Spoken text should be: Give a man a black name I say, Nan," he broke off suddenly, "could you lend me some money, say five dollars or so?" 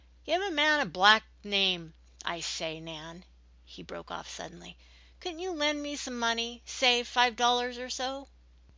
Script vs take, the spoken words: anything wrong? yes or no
yes